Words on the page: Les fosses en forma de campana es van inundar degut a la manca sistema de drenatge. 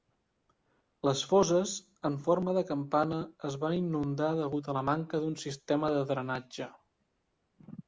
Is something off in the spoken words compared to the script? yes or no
yes